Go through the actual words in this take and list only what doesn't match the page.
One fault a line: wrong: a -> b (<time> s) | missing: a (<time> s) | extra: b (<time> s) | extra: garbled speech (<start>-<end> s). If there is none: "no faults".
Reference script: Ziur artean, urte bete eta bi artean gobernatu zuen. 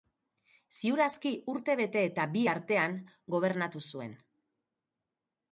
wrong: artean -> aski (1.1 s)